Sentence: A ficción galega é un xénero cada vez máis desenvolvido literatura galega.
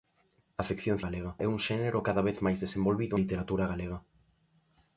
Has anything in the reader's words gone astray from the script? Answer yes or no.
no